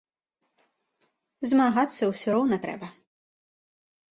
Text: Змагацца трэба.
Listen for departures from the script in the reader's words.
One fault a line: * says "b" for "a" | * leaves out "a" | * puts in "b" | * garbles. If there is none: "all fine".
* puts in "ўсё роўна"